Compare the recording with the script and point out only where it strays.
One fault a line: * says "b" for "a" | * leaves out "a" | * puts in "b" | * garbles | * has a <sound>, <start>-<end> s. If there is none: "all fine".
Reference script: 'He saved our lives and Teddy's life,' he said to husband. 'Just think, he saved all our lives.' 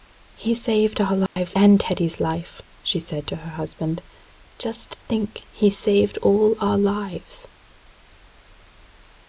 * has a dropout, 1.3-1.4 s
* says "she" for "he"
* puts in "her"